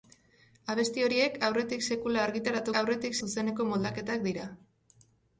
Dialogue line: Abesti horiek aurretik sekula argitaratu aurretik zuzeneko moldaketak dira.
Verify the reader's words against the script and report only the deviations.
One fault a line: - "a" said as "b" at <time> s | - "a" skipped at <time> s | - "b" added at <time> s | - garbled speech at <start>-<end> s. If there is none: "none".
none